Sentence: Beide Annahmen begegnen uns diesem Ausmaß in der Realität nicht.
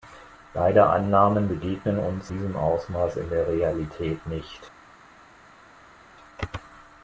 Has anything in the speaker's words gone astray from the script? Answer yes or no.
no